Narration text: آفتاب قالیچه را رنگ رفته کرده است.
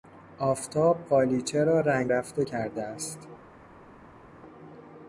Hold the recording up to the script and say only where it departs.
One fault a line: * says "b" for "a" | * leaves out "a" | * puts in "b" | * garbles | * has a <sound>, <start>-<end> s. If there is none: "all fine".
all fine